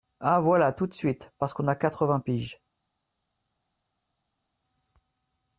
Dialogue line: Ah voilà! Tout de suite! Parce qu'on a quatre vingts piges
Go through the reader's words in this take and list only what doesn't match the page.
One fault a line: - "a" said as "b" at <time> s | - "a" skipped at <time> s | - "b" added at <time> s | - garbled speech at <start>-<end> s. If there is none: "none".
none